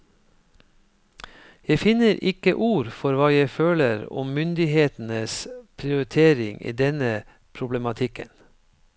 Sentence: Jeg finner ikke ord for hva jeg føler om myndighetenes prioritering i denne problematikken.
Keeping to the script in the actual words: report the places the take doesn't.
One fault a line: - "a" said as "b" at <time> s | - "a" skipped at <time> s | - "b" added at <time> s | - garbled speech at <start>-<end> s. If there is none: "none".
none